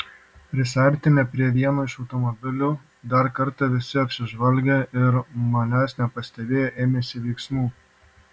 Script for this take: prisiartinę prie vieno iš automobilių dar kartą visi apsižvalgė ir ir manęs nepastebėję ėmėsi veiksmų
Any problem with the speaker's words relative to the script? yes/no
yes